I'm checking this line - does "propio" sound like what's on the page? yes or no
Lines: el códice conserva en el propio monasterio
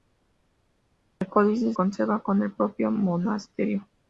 yes